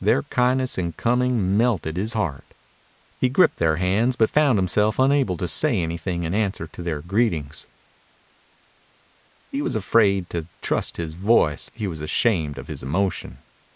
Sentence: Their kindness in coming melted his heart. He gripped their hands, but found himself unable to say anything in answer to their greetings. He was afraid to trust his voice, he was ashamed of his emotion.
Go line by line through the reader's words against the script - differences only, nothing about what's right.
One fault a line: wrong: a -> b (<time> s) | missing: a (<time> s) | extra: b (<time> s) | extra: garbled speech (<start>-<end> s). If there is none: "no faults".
no faults